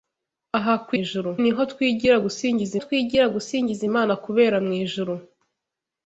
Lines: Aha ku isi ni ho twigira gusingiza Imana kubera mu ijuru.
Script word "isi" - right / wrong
wrong